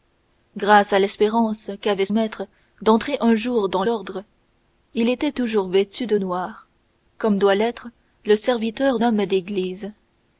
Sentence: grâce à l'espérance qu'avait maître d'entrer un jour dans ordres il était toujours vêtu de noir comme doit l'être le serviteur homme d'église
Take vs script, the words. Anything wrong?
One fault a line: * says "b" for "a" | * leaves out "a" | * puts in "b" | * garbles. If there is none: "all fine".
all fine